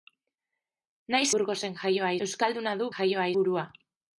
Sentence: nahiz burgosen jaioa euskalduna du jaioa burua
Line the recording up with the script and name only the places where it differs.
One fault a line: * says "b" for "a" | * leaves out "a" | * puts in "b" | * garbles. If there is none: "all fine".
all fine